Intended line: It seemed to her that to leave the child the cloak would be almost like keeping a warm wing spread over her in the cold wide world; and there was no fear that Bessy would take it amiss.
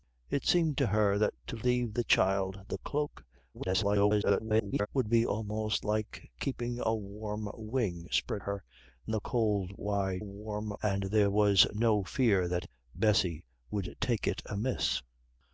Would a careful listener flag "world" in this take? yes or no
yes